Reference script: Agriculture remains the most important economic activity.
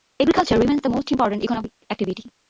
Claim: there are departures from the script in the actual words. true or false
false